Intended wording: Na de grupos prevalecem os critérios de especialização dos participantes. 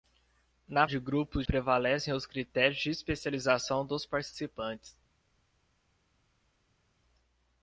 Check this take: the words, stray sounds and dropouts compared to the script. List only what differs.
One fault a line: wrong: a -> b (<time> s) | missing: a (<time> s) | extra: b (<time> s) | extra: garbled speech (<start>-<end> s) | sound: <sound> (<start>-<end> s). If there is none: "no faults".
no faults